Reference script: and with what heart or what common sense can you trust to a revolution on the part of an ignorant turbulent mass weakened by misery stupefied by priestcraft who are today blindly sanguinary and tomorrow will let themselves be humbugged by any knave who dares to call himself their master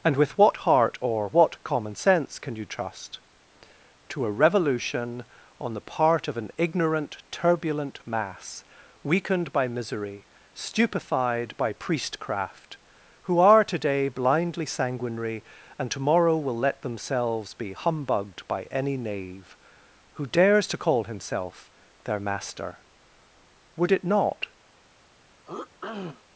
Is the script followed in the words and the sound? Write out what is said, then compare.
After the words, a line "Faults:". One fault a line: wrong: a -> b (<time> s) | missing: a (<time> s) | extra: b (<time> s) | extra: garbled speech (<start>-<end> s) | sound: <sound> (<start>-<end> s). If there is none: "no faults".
and with what heart or what common sense can you trust to a revolution on the part of an ignorant turbulent mass weakened by misery stupefied by priestcraft who are today blindly sanguinary and tomorrow will let themselves be humbugged by any knave who dares to call himself their master would it not
Faults:
extra: would it not (23.8 s)
sound: throat clearing (25.5-26.2 s)